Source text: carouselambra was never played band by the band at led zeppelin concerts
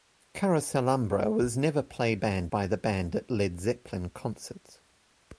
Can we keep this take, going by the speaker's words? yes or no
yes